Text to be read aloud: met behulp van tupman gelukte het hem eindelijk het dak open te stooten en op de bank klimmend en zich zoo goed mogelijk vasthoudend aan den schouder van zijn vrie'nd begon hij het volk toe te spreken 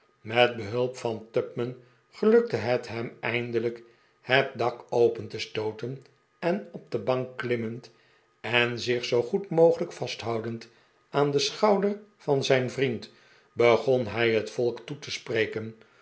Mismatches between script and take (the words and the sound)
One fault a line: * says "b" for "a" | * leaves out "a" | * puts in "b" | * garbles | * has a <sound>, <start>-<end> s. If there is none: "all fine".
all fine